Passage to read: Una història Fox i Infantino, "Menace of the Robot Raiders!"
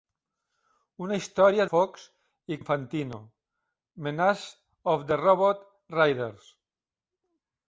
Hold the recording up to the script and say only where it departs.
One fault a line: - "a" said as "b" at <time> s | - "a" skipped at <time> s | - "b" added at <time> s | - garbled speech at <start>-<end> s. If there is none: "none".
none